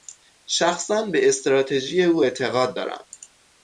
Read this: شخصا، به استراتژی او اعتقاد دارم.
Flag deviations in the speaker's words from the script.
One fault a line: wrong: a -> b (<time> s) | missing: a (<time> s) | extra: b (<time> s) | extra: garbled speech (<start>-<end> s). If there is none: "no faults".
no faults